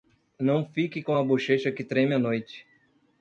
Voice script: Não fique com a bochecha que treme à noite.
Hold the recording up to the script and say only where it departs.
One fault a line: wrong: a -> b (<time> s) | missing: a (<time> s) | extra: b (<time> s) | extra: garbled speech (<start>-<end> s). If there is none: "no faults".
no faults